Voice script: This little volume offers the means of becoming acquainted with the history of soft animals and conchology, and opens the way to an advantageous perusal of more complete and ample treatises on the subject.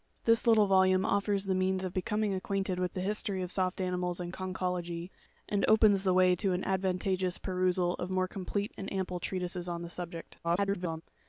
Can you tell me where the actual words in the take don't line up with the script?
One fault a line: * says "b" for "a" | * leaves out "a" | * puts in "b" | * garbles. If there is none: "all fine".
* garbles